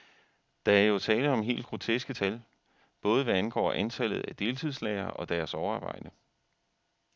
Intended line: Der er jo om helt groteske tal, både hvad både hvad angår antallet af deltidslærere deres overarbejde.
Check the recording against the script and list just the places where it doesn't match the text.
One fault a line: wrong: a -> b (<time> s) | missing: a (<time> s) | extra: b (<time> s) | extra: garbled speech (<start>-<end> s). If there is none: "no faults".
extra: tale (1.0 s)
missing: både hvad (3.3 s)
extra: og (5.1 s)